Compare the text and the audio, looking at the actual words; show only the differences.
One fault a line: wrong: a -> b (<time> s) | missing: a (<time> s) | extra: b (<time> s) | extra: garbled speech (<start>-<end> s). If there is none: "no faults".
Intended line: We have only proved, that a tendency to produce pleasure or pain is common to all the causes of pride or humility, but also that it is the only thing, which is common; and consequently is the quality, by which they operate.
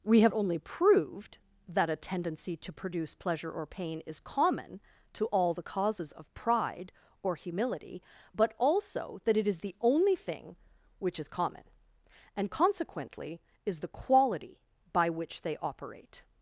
no faults